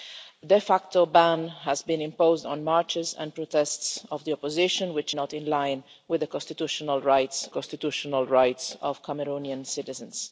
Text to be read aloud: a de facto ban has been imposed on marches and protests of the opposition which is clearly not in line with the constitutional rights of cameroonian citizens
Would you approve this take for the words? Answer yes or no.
no